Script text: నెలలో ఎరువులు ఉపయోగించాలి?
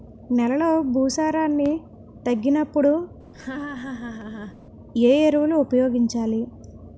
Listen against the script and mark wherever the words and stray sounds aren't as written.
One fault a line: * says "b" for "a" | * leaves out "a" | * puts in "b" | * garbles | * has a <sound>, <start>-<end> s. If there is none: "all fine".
* puts in "భూసారాన్ని తగ్గినప్పుడు ఏ"
* has a laugh, 3.3-4.6 s